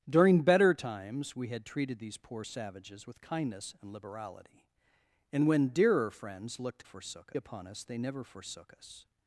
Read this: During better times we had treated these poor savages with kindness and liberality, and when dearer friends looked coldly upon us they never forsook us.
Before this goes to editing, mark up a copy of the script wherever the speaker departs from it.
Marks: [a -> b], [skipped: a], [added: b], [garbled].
During better times we had treated these poor savages with kindness and liberality, and when dearer friends looked [coldly -> forsook] upon us they never forsook us.